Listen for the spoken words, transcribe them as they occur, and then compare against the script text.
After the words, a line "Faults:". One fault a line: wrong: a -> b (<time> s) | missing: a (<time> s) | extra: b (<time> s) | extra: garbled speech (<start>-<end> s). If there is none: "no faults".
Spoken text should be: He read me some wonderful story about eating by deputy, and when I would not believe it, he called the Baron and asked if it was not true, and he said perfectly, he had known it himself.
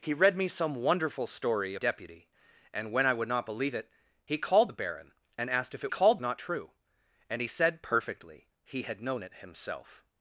He read me some wonderful story deputy, and when I would not believe it, he called the Baron and asked if it called not true, and he said perfectly, he had known it himself.
Faults:
missing: about eating by (1.8 s)
wrong: was -> called (5.9 s)